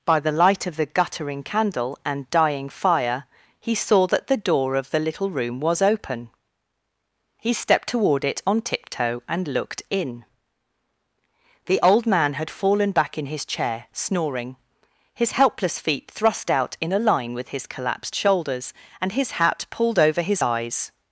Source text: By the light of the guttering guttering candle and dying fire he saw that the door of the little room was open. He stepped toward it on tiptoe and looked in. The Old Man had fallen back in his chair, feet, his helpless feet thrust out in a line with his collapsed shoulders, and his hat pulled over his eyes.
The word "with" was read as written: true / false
true